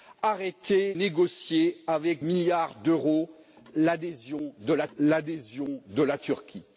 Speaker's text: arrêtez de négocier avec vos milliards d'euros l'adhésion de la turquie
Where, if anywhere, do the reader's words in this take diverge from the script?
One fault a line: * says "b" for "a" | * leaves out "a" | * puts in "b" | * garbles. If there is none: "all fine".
* leaves out "de"
* leaves out "vos"
* puts in "l'adhésion de la"